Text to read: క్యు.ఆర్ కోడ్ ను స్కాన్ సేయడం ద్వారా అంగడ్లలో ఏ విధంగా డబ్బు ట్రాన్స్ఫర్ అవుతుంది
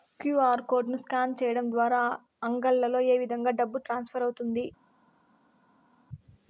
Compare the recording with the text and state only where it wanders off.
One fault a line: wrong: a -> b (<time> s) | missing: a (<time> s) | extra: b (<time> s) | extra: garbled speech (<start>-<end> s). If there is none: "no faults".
no faults